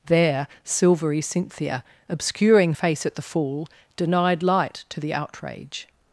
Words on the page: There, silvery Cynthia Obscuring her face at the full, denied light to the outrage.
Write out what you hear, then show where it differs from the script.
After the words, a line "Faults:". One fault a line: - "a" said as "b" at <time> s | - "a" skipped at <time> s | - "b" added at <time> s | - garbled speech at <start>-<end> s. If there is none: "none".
There, silvery Cynthia Obscuring face at the full, denied light to the outrage.
Faults:
- "her" skipped at 2.7 s